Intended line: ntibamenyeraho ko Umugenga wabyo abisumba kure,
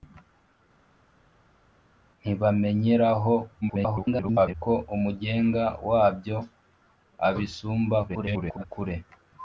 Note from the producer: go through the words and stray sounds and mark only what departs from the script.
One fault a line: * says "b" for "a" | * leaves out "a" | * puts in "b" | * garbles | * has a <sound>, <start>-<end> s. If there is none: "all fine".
* garbles
* garbles